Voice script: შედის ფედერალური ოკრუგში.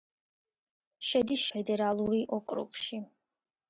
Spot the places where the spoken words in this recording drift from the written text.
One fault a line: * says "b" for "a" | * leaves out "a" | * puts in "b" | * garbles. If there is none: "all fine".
all fine